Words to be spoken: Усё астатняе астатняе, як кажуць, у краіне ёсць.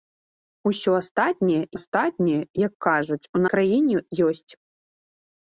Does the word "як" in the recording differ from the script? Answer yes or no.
no